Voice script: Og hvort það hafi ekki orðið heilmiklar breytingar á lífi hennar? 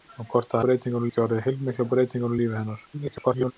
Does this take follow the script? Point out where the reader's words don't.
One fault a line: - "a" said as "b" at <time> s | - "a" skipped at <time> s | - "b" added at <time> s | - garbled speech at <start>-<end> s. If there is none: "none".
- "hafi" said as "breytingar" at 0.7 s
- garbled speech at 2.9-3.5 s